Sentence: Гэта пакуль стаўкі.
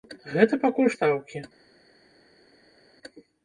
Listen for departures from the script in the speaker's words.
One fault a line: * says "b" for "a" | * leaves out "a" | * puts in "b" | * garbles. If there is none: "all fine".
all fine